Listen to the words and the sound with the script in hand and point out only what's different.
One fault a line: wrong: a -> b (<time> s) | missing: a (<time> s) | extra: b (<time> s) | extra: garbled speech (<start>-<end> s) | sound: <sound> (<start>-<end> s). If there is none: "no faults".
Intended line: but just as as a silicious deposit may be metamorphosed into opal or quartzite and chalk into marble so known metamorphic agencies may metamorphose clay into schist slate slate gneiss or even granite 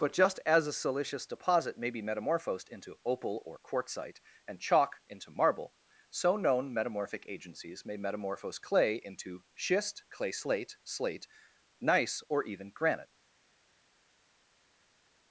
missing: as (0.7 s)
extra: clay (10.1 s)